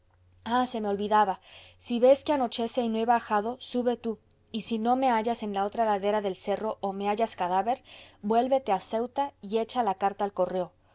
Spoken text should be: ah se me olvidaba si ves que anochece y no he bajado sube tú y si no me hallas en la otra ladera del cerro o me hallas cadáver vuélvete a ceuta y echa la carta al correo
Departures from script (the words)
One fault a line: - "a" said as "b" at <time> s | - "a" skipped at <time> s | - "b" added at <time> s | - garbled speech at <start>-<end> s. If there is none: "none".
none